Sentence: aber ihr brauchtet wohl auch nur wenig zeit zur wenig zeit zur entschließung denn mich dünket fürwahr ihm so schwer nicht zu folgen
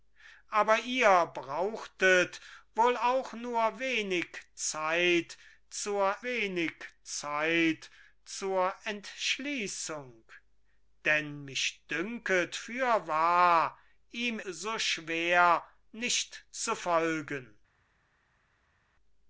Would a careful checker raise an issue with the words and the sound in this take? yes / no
no